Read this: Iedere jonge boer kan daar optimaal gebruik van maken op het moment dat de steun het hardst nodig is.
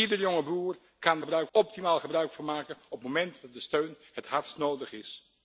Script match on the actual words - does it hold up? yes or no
no